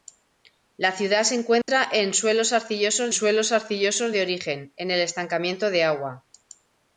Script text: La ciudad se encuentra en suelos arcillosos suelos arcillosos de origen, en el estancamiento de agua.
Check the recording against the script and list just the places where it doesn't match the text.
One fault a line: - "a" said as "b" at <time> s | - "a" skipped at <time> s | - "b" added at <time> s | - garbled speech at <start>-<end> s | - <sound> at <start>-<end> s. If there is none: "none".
- dropout at 1.6-1.7 s